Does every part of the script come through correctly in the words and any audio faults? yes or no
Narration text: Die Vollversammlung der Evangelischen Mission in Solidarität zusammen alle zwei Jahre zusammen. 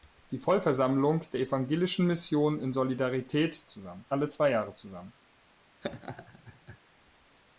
no